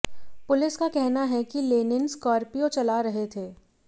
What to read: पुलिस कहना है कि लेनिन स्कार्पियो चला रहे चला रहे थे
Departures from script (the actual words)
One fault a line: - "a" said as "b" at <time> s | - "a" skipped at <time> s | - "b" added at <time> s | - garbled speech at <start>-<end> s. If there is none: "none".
- "का" added at 0.7 s
- "चला रहे" skipped at 3.3 s